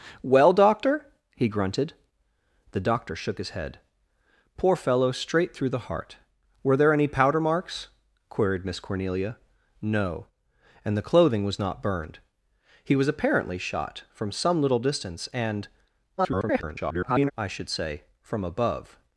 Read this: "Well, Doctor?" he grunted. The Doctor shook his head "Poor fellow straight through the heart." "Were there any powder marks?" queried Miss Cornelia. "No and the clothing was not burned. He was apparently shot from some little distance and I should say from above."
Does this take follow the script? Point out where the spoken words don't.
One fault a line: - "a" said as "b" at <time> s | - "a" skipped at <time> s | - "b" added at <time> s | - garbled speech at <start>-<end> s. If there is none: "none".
- garbled speech at 16.2-17.3 s